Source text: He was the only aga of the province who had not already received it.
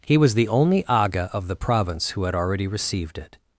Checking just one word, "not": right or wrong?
wrong